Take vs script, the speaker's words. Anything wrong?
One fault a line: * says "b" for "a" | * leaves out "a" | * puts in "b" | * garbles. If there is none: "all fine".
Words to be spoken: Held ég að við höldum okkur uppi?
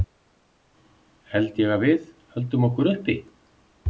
all fine